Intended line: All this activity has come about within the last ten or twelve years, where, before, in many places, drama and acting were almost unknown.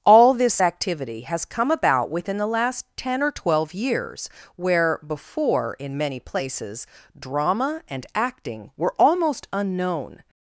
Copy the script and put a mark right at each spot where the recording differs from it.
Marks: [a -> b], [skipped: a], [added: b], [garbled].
All this activity has come about within the last ten or twelve years, where, before, in many places, drama and acting were almost unknown.